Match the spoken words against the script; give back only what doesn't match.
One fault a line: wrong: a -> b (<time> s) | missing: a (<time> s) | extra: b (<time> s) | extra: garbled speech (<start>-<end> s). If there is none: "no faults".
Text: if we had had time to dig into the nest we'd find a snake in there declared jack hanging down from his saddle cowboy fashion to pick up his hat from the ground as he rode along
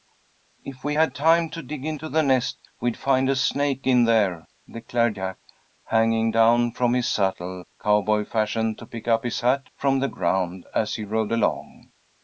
missing: had (1.1 s)